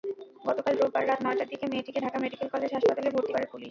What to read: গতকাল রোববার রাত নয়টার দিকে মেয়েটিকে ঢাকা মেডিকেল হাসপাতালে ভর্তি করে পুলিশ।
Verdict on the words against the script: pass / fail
fail